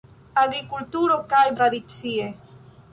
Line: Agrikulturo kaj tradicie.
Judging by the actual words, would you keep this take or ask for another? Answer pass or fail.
pass